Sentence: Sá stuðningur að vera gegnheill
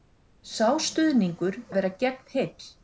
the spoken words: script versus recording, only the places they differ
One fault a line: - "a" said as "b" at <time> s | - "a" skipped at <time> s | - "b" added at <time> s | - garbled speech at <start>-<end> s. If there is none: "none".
none